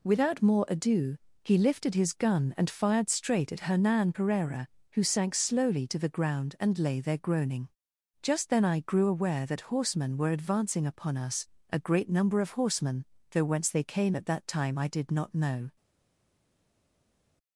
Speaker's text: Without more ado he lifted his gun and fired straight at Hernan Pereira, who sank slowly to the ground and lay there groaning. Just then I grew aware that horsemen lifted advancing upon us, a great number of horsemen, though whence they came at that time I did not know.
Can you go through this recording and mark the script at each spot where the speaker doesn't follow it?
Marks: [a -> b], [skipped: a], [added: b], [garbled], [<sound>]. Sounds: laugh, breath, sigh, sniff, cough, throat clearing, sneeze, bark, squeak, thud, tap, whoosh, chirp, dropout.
Without more ado he lifted his gun and fired straight at Hernan Pereira, who sank slowly to the ground and lay there groaning. Just then I grew aware that horsemen [lifted -> were] advancing upon us, a great number of horsemen, though whence they came at that time I did not know.